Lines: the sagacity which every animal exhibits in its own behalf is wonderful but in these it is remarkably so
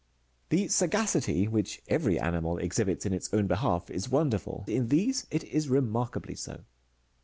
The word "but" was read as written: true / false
false